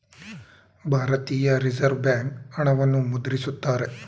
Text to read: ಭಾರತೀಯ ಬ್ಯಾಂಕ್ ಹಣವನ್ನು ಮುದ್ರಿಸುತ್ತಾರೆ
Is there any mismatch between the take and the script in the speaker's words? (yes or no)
yes